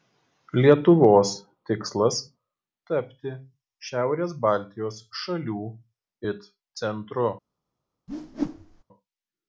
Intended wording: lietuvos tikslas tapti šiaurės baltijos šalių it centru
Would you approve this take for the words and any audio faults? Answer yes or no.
no